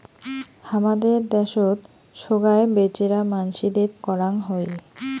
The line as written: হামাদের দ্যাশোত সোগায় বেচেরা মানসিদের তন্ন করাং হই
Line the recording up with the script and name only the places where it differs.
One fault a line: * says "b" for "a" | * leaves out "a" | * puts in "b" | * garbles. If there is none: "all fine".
* leaves out "তন্ন"